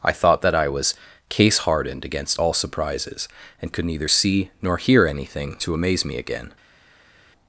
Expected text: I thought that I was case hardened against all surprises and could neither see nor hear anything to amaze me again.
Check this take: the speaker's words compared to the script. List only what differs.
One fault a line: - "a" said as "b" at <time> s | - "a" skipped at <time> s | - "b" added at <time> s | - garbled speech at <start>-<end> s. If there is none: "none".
none